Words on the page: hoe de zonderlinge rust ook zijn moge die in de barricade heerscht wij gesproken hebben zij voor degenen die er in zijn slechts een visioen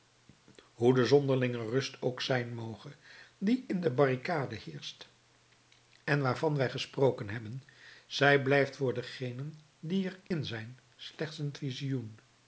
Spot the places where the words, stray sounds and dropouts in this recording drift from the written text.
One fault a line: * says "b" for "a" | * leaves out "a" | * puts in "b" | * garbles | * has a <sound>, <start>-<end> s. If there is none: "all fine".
* puts in "en waarvan"
* puts in "blijft"
* has a dropout, 10.3-10.3 s